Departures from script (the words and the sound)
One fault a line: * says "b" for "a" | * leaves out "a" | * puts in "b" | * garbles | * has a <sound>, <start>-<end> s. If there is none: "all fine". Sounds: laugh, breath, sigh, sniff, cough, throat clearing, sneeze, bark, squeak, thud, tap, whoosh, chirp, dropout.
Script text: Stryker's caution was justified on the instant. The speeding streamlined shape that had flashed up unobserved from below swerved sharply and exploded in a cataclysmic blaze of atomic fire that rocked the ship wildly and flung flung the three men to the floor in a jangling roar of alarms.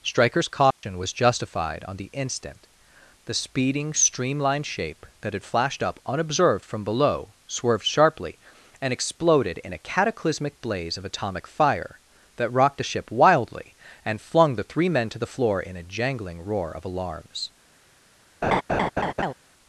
* has a dropout, 0.7-0.8 s
* leaves out "flung"
* has a laugh, 18.4-19.3 s